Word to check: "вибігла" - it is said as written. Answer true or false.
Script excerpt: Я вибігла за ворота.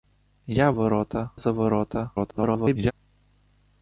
false